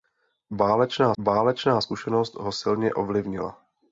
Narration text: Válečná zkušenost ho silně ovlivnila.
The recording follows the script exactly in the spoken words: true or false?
false